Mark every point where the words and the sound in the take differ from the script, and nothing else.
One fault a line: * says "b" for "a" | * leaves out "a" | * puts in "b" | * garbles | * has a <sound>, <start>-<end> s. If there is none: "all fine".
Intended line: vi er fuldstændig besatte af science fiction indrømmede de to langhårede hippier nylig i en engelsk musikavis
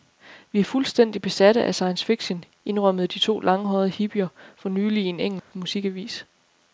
* puts in "for"
* has a dropout, 5.4-5.5 s